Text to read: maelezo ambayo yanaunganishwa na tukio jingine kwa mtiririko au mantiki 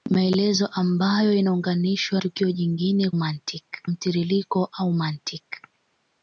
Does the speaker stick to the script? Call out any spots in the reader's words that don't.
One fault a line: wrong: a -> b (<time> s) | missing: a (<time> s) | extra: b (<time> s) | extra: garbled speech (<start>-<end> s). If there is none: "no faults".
missing: na (2.2 s)
wrong: kwa -> mantiki (3.1 s)